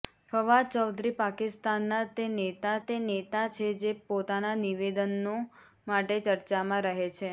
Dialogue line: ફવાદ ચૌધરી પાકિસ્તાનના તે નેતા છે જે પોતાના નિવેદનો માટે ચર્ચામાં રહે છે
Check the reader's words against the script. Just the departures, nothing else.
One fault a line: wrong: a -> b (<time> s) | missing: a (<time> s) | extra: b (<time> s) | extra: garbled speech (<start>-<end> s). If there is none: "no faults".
extra: તે નેતા (2.8 s)